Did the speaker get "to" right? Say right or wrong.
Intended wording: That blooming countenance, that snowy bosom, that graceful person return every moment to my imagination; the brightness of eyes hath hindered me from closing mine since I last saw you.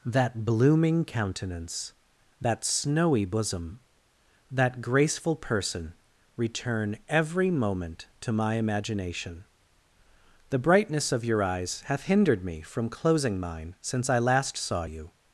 right